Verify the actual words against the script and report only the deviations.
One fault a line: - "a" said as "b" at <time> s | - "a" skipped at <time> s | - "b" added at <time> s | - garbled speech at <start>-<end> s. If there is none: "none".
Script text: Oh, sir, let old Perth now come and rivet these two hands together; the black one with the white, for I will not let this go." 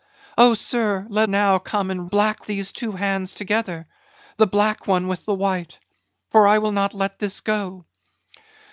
- "old Perth" skipped at 1.3 s
- "rivet" said as "black" at 2.0 s